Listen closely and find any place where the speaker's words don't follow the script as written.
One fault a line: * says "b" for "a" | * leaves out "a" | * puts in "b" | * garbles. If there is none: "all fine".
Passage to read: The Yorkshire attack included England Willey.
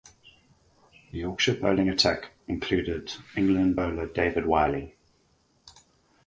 * puts in "bowling"
* puts in "bowler David"